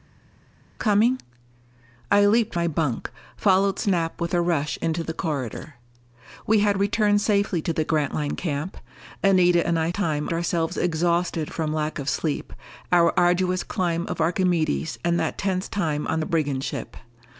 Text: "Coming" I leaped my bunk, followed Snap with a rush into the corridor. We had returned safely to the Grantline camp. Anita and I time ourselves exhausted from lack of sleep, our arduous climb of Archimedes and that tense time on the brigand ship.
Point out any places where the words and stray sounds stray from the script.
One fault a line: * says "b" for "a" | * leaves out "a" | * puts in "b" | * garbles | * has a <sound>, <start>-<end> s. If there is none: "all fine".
all fine